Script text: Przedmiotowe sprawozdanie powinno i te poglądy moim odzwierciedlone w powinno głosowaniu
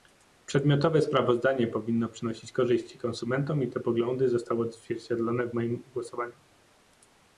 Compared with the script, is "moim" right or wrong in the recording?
wrong